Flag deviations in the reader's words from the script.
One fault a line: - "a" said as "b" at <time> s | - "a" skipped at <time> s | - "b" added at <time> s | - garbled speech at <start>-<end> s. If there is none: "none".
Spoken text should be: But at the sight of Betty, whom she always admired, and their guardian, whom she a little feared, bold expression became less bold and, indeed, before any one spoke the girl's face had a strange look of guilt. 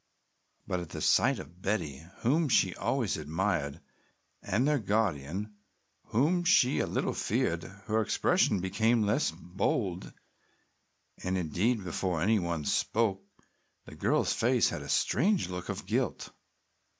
- "bold" said as "her" at 7.8 s